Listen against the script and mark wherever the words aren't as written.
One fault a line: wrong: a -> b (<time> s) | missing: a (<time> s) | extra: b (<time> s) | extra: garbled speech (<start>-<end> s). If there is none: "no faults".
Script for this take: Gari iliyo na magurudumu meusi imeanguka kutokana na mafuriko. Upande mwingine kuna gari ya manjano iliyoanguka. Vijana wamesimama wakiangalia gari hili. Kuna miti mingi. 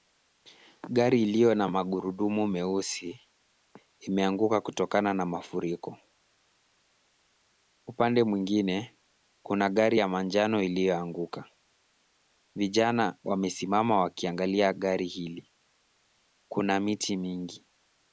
no faults